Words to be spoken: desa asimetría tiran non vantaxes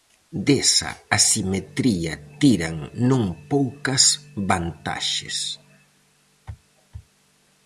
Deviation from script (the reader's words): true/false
true